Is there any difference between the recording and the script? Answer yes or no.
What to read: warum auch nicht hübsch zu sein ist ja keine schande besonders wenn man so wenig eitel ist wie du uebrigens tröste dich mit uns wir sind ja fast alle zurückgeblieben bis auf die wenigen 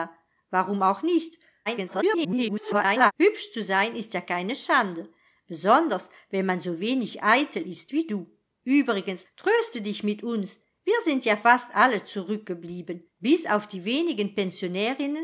yes